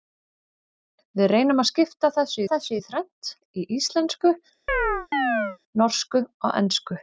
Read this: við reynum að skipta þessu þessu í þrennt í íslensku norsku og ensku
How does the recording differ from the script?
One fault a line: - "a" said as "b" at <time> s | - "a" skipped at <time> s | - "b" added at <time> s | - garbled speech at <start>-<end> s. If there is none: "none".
none